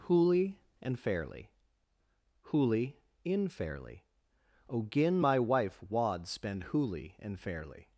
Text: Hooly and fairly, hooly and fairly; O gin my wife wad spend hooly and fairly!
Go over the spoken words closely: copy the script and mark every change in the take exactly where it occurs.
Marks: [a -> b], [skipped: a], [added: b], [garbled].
Hooly and fairly, hooly [and -> in] fairly; O gin my wife wad spend hooly and fairly!